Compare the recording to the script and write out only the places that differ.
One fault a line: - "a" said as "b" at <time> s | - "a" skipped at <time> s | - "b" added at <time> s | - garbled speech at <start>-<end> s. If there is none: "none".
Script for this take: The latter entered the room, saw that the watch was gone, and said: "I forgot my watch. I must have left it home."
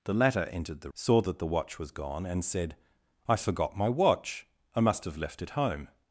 - "room" skipped at 0.9 s